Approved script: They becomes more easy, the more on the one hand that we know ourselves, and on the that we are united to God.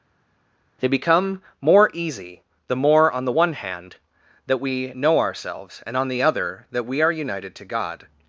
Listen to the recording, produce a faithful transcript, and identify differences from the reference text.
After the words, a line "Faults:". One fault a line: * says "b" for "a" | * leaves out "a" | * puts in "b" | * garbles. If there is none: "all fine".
They become more easy, the more on the one hand that we know ourselves, and on the other that we are united to God.
Faults:
* says "become" for "becomes"
* puts in "other"